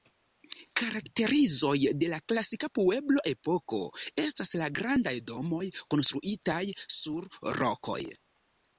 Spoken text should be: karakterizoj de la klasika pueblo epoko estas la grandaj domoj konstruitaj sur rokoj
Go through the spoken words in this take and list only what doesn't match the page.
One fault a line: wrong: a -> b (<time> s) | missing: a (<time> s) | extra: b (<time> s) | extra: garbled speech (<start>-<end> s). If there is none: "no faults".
no faults